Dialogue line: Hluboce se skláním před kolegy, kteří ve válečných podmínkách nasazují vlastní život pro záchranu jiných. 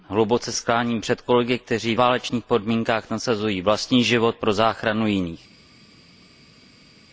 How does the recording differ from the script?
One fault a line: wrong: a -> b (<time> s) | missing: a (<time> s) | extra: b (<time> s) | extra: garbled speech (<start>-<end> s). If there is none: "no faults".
missing: se (0.5 s)
missing: ve (1.9 s)